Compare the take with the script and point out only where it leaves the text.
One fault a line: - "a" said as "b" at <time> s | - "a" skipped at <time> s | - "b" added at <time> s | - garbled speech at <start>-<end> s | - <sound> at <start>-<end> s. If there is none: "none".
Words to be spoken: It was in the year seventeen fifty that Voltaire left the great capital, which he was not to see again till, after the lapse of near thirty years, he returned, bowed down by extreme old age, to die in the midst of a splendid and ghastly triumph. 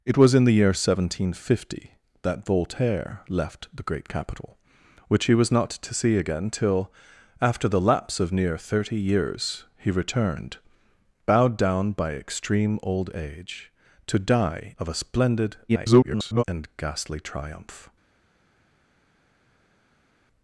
- "in the midst" skipped at 14.7 s
- garbled speech at 15.7-16.4 s